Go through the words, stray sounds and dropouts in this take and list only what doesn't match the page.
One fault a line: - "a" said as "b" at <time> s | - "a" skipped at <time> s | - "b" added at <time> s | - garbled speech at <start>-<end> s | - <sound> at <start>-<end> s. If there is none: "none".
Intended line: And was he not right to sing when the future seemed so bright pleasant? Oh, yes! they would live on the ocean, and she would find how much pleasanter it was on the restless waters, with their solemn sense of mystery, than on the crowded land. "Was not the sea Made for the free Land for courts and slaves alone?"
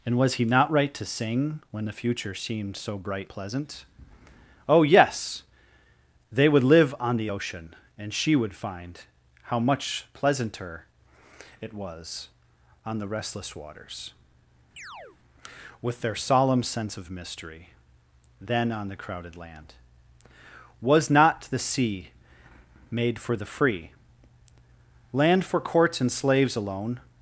- chirp at 14.8-15.2 s